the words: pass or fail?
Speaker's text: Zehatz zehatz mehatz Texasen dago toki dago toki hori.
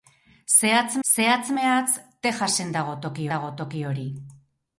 pass